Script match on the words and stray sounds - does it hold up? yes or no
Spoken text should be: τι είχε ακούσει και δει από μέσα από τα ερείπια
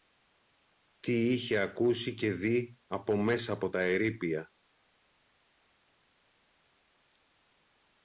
yes